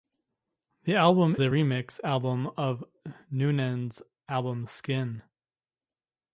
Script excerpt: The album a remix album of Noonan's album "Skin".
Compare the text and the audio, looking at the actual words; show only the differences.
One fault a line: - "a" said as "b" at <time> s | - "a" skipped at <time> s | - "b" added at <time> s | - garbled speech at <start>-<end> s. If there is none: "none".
none